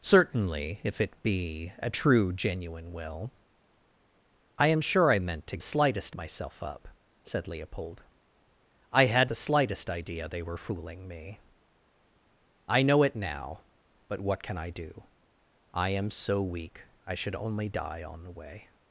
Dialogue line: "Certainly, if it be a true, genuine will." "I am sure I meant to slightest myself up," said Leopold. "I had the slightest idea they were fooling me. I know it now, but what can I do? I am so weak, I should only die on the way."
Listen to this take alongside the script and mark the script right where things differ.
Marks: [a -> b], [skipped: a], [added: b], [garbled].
"Certainly, if it be a true, genuine will." "I am sure I meant to slightest myself up," said Leopold. "I had the slightest idea they were fooling me. I know it now, but what can I do? I am so weak, I should only die on the way."